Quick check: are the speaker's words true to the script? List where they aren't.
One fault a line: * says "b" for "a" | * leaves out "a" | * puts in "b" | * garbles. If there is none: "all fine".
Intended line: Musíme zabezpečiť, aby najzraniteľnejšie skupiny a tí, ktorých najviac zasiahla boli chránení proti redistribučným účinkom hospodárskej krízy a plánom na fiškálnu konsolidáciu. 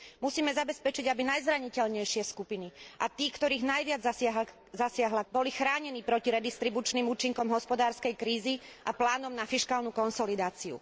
all fine